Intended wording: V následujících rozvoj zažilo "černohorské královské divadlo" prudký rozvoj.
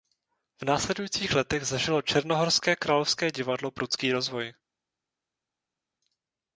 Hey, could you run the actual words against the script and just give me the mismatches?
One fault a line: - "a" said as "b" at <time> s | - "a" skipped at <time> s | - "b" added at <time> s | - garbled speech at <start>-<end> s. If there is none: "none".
- "rozvoj" said as "letech" at 1.4 s